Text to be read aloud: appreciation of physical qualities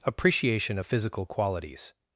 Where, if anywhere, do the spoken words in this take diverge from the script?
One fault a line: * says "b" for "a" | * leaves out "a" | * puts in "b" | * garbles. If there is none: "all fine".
all fine